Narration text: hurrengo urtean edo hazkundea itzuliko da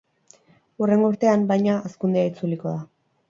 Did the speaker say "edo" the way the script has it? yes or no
no